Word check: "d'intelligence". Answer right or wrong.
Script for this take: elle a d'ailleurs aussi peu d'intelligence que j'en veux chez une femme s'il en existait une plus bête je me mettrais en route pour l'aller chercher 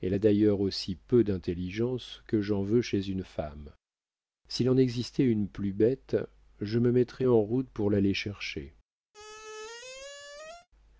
right